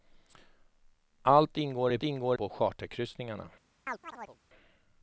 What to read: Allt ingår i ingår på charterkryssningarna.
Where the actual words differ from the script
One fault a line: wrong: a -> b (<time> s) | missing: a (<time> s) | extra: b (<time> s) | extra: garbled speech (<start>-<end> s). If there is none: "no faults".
no faults